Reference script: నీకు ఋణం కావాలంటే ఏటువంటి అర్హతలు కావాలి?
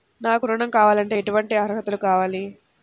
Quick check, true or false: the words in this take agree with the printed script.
false